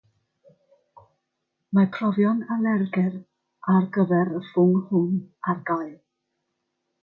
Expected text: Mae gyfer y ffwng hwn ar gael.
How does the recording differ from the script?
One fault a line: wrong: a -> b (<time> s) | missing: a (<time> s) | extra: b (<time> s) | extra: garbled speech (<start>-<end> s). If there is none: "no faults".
extra: profion alergedd ar (1.9 s)